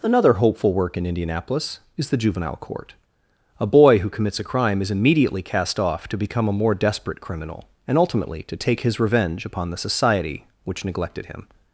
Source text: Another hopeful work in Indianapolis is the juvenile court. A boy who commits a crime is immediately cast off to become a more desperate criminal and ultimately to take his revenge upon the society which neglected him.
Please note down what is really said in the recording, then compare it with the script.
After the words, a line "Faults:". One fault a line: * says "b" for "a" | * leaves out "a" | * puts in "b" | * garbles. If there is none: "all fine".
Another hopeful work in Indianapolis is the juvenile court. A boy who commits a crime is immediately cast off to become a more desperate criminal and ultimately to take his revenge upon the society which neglected him.
Faults:
all fine